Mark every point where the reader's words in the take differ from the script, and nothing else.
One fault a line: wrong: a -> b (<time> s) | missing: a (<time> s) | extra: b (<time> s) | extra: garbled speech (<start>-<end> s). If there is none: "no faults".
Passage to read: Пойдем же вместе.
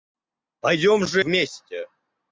no faults